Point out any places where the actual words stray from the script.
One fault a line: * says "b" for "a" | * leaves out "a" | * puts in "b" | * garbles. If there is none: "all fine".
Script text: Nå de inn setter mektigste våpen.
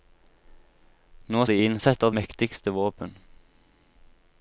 all fine